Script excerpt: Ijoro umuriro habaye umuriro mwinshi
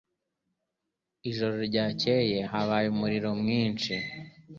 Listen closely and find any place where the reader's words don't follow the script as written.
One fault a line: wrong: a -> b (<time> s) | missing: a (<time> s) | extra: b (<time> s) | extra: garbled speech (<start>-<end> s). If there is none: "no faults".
wrong: umuriro -> ryakeye (1.7 s)